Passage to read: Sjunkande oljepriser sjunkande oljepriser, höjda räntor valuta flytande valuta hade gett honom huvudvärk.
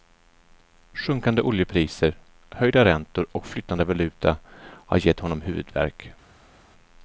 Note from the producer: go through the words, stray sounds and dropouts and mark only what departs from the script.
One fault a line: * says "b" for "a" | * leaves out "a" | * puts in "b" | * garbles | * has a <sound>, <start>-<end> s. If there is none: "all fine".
* leaves out "sjunkande oljepriser"
* says "och" for "valuta"
* says "har" for "hade"